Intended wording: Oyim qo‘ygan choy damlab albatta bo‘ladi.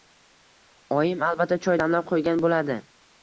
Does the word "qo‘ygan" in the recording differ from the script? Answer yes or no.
yes